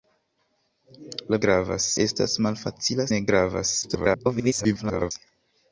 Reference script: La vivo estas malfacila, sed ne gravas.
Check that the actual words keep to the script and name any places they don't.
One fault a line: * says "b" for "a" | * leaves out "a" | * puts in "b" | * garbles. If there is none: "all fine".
* says "gravas" for "vivo"
* leaves out "sed"
* garbles